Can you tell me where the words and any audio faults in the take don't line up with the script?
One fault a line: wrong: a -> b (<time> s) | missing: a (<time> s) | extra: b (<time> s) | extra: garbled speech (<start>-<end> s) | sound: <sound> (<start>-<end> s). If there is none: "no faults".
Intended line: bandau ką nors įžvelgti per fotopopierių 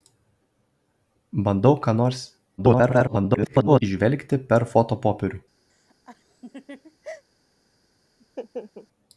extra: garbled speech (2.6-3.8 s)
sound: laugh (5.7-7.2 s)
sound: laugh (8.2-8.9 s)